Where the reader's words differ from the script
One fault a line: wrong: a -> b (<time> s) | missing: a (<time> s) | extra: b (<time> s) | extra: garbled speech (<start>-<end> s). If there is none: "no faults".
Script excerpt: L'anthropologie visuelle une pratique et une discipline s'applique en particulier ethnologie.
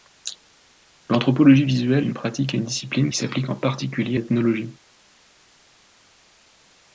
no faults